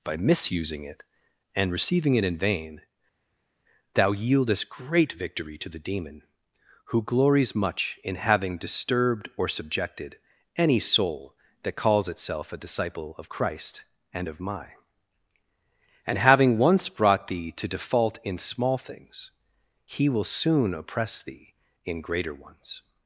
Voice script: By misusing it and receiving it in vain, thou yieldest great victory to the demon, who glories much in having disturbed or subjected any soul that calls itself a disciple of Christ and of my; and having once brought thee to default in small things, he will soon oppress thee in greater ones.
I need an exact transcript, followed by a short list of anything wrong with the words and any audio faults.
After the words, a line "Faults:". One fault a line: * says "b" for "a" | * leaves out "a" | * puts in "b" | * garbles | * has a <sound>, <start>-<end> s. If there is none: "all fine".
By misusing it and receiving it in vain, thou yieldest great victory to the demon, who glories much in having disturbed or subjected any soul that calls itself a disciple of Christ and of my; and having once brought thee to default in small things, he will soon oppress thee in greater ones.
Faults:
all fine